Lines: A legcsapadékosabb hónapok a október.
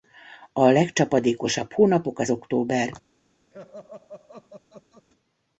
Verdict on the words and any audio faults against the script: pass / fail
fail